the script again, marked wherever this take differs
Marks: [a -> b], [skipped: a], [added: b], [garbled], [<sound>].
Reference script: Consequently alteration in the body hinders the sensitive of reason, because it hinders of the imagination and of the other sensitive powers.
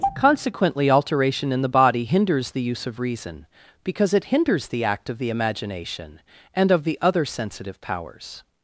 Consequently alteration in the body hinders the [sensitive -> use] of reason, because it hinders [added: the act] of the imagination and of the other sensitive powers.